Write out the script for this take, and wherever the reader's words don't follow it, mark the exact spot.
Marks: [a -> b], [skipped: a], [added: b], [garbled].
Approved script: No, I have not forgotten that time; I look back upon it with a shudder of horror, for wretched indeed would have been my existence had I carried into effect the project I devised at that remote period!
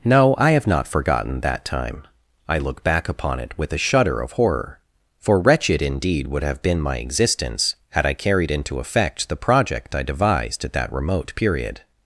No, I have not forgotten that time; I look back upon it with a shudder of horror, for wretched indeed would have been my existence had I carried into effect the project I devised at that remote period!